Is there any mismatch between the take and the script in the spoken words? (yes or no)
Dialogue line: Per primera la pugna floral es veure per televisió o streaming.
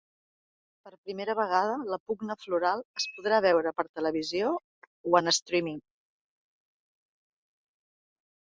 yes